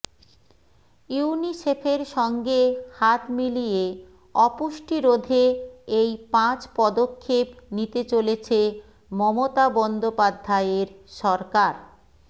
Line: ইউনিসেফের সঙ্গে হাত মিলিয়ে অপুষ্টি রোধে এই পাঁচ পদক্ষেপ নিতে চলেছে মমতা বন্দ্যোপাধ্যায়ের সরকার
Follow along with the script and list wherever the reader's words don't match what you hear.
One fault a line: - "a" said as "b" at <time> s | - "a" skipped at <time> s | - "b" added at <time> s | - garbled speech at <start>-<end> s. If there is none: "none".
none